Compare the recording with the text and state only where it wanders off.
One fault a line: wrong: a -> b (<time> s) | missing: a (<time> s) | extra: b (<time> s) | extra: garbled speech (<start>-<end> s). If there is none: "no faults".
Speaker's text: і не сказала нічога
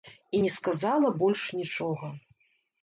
extra: больш (1.2 s)